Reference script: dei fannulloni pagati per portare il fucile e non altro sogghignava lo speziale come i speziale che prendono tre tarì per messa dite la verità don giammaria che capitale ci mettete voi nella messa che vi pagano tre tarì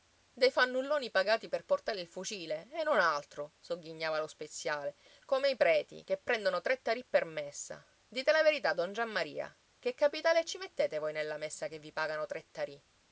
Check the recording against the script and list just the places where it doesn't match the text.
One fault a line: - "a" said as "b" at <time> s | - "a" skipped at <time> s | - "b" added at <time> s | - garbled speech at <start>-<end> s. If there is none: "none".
- "speziale" said as "preti" at 5.5 s